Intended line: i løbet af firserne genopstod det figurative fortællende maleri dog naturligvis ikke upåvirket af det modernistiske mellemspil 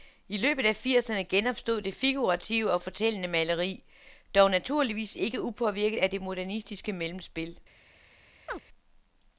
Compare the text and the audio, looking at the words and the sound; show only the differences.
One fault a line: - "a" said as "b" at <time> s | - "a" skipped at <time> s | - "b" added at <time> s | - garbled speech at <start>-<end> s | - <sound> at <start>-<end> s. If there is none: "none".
- "og" added at 2.7 s
- chirp at 8.5-8.6 s